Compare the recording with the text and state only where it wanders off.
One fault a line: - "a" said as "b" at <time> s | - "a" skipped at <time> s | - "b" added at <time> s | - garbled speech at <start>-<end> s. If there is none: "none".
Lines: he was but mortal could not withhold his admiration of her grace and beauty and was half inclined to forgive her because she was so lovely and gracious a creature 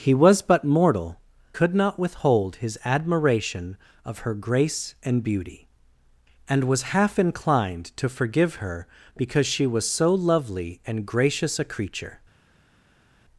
none